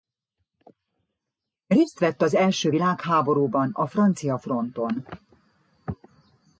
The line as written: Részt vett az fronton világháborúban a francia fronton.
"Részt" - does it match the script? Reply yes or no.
yes